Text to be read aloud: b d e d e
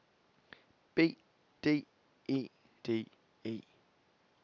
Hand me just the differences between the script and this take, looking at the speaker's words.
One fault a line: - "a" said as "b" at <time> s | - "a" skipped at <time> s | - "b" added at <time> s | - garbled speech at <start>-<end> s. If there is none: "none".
none